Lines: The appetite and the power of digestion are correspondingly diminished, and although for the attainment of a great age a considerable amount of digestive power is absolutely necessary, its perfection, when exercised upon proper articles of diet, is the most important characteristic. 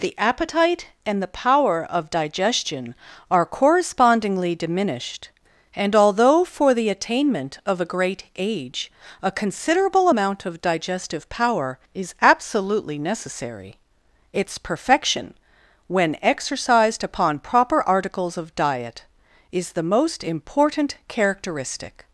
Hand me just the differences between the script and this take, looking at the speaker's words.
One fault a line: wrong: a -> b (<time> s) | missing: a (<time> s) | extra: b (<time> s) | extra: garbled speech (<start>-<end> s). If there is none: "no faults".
no faults